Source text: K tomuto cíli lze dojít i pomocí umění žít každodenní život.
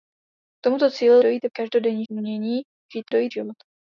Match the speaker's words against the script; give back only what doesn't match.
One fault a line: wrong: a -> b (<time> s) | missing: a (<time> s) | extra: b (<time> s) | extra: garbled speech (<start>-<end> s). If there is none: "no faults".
missing: lze (1.1 s)
wrong: pomocí -> každodenní (1.5 s)
wrong: každodenní -> dojít (3.1 s)